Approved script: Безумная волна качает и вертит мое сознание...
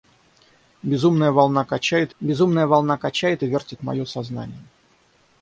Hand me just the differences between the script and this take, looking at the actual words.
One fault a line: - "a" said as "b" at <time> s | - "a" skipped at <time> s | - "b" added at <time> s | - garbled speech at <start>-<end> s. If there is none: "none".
- "безумная волна качает" added at 2.2 s